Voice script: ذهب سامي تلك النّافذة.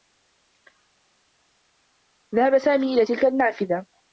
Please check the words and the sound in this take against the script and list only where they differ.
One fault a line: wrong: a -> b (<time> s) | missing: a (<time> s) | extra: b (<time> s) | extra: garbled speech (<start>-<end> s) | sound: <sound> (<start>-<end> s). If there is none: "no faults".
extra: إلى (2.9 s)